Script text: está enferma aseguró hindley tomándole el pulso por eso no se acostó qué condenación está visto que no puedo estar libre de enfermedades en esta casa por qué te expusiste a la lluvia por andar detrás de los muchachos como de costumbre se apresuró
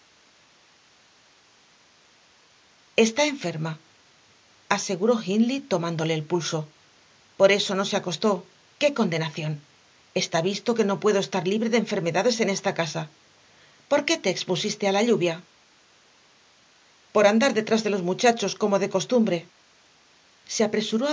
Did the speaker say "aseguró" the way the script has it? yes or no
yes